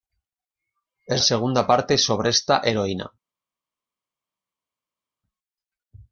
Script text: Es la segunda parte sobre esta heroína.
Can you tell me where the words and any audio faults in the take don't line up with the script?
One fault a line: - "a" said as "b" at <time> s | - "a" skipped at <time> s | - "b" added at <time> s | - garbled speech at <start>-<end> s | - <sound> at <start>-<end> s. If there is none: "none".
- "la" skipped at 1.2 s